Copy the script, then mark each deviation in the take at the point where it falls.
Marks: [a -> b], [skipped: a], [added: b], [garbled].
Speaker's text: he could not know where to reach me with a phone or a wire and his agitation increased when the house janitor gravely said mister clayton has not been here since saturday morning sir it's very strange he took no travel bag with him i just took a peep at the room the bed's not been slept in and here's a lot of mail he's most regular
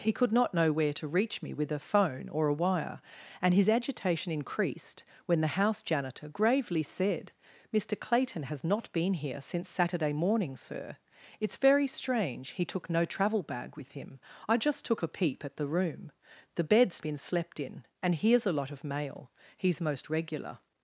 he could not know where to reach me with a phone or a wire and his agitation increased when the house janitor gravely said mister clayton has not been here since saturday morning sir it's very strange he took no travel bag with him i just took a peep at the room the bed's [skipped: not] been slept in and here's a lot of mail he's most regular